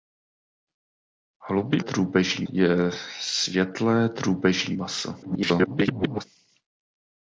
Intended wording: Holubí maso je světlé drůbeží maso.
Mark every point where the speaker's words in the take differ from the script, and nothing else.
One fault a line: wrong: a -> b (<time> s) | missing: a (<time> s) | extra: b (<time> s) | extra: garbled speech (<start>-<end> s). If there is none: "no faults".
wrong: maso -> drůbeží (1.8 s)
extra: garbled speech (5.2-6.2 s)